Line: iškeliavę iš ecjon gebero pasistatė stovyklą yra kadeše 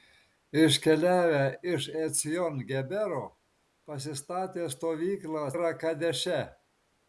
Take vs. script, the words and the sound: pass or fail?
pass